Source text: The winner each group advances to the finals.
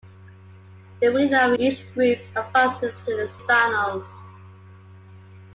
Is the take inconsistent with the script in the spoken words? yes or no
no